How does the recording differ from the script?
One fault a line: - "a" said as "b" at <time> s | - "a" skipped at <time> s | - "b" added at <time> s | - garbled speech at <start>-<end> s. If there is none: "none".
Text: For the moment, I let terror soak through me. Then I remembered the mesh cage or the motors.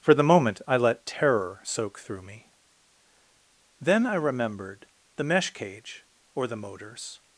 none